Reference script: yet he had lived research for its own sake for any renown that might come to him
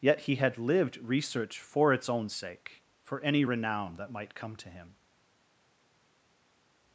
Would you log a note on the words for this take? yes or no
no